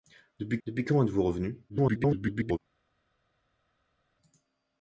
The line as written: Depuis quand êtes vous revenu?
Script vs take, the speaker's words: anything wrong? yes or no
yes